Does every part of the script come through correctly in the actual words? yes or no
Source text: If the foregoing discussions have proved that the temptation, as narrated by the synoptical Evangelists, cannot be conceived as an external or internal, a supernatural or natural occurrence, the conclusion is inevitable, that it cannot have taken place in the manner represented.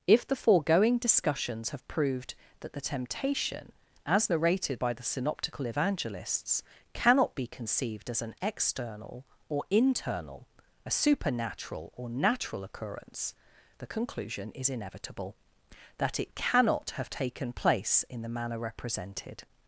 yes